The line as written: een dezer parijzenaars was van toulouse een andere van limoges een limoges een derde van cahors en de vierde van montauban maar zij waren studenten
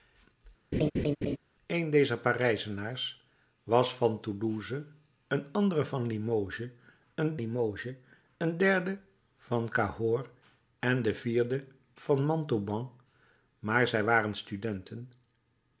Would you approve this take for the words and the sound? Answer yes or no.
no